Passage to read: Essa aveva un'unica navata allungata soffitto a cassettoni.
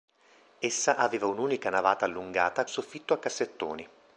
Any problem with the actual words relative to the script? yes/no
no